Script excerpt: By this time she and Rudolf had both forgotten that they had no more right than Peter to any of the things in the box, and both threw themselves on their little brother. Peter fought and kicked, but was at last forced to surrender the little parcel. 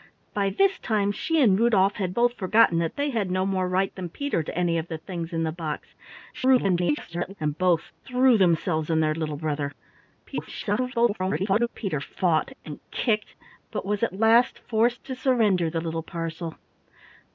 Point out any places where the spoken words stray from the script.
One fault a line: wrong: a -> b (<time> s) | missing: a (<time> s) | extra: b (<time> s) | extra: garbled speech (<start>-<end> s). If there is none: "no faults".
extra: garbled speech (6.3-7.4 s)
extra: garbled speech (10.3-11.7 s)